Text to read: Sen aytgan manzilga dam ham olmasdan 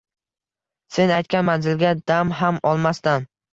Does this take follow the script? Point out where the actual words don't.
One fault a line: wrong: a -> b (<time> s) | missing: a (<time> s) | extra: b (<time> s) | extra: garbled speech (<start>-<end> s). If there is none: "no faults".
no faults